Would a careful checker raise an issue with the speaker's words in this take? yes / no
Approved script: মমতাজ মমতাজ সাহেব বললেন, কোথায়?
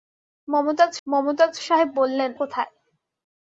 no